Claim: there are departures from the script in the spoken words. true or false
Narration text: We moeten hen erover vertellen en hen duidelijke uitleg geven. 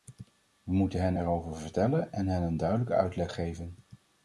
true